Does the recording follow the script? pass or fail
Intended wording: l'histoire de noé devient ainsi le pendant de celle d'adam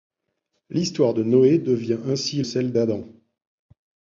fail